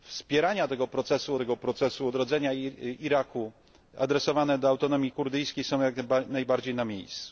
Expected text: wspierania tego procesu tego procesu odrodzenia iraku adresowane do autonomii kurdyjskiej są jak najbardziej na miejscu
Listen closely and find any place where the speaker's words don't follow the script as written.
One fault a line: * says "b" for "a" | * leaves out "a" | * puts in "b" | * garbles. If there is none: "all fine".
all fine